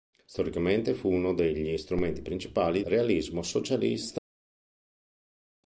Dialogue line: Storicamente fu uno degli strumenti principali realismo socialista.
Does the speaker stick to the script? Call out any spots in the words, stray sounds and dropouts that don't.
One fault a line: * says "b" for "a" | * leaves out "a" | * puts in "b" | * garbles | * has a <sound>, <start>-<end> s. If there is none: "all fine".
all fine